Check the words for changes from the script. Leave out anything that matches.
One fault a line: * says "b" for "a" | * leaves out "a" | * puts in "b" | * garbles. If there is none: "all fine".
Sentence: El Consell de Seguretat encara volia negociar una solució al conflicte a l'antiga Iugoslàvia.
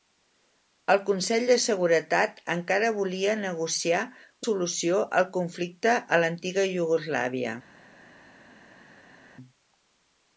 * leaves out "una"